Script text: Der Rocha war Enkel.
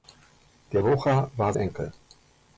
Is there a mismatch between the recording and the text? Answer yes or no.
no